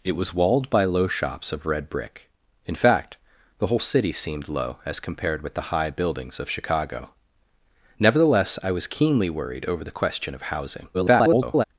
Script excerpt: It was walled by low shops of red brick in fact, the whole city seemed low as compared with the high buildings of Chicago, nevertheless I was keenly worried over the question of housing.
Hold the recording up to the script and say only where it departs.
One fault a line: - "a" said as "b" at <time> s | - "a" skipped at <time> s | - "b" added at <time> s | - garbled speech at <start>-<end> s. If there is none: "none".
- garbled speech at 10.9-11.6 s